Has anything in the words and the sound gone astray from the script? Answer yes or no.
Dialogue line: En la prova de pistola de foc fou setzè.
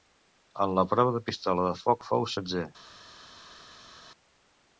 no